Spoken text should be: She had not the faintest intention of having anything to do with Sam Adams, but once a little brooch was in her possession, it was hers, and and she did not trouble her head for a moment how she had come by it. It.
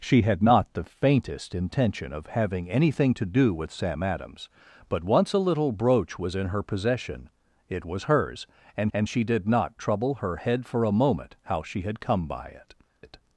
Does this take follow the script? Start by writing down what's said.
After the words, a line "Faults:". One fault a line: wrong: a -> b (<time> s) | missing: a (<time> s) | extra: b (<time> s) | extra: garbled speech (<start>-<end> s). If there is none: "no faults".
She had not the faintest intention of having anything to do with Sam Adams, but once a little brooch was in her possession, it was hers, and and she did not trouble her head for a moment how she had come by it. It.
Faults:
no faults